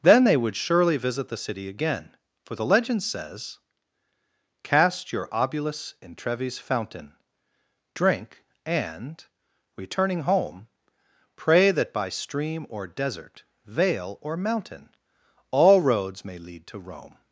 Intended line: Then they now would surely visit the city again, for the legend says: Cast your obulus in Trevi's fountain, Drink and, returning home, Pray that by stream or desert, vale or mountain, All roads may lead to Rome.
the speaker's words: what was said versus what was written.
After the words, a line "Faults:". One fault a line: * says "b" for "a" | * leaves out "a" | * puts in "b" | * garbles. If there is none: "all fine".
Then they would surely visit the city again, for the legend says: Cast your obulus in Trevi's fountain, Drink and, returning home, Pray that by stream or desert, vale or mountain, All roads may lead to Rome.
Faults:
* leaves out "now"